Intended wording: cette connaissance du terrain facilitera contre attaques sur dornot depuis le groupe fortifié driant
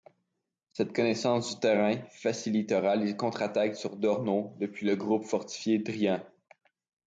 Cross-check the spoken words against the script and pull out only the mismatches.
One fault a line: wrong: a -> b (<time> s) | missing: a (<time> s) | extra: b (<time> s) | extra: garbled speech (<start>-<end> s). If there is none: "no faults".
extra: les (3.0 s)